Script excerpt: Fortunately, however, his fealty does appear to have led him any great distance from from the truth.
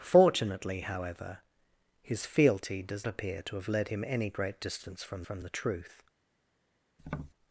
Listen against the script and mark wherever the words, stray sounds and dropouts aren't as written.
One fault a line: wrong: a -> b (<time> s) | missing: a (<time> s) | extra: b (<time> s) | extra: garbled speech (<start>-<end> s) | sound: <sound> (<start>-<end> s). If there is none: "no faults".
sound: tap (7.0-7.3 s)